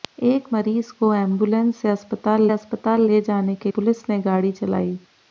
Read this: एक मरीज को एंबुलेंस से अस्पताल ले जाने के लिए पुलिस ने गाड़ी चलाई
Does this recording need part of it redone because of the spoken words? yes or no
yes